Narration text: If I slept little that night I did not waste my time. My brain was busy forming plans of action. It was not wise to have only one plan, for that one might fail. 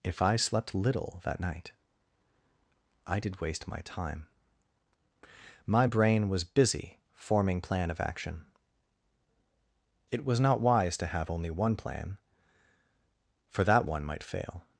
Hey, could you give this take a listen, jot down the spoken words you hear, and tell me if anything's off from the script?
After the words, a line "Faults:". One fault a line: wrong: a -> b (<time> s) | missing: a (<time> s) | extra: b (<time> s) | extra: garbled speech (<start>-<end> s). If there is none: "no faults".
If I slept little that night I did waste my time. My brain was busy forming plan of action. It was not wise to have only one plan, for that one might fail.
Faults:
missing: not (3.4 s)
wrong: plans -> plan (7.6 s)